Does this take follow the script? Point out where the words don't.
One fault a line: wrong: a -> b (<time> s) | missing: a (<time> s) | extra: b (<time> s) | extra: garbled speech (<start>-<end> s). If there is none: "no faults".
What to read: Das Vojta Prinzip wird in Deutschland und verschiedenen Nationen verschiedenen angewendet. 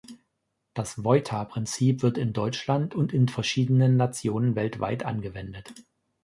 extra: in (3.1 s)
wrong: verschiedenen -> weltweit (4.6 s)